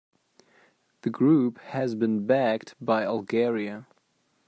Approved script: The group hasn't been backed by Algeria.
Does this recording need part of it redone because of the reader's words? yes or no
yes